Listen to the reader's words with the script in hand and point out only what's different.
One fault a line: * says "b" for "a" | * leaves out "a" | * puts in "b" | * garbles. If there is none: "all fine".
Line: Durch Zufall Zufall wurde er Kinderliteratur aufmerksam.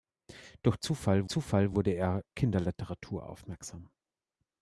all fine